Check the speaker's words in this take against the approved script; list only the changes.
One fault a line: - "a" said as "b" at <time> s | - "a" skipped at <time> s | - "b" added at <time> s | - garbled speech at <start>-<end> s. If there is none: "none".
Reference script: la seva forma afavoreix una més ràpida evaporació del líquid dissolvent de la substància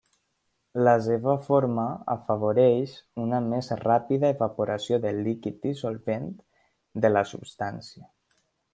none